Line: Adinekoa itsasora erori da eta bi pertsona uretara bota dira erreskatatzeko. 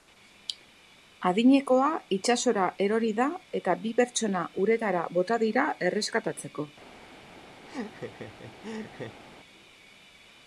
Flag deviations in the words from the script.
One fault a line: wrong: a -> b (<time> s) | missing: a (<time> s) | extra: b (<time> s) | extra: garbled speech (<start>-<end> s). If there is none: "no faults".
no faults